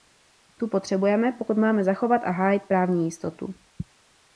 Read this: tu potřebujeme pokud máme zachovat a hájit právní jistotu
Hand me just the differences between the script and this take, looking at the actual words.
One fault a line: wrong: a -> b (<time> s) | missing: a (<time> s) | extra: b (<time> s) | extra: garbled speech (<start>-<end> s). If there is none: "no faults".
no faults